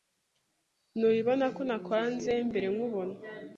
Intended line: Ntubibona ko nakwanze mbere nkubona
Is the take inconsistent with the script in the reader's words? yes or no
no